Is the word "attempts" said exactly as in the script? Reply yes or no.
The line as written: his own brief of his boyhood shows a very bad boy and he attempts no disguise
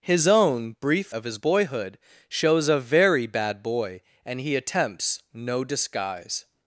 yes